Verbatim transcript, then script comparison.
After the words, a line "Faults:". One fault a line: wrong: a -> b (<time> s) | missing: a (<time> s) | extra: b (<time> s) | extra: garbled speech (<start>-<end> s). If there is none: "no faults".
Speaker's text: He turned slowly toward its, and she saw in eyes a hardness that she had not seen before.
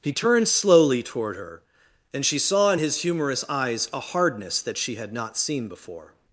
He turned slowly toward her, and she saw in his humorous eyes a hardness that she had not seen before.
Faults:
wrong: its -> her (1.4 s)
extra: his humorous (2.8 s)